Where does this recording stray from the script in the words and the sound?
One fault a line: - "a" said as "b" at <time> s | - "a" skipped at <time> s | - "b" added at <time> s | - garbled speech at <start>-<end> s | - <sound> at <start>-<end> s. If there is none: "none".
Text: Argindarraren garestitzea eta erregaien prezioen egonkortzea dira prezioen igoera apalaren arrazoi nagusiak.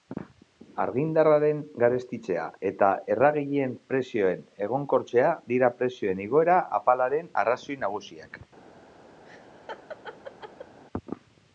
- laugh at 9.2-10.8 s